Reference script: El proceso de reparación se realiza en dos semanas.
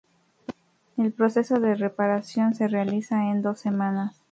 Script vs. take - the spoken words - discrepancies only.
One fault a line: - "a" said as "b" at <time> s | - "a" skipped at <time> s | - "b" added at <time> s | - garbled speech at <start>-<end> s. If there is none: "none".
none